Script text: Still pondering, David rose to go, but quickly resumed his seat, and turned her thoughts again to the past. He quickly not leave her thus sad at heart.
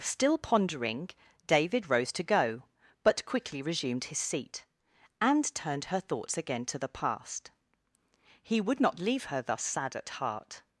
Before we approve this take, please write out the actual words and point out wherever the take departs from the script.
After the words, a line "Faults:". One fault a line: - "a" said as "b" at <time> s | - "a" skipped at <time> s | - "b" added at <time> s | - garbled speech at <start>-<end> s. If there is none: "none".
Still pondering, David rose to go, but quickly resumed his seat, and turned her thoughts again to the past. He would not leave her thus sad at heart.
Faults:
- "quickly" said as "would" at 8.6 s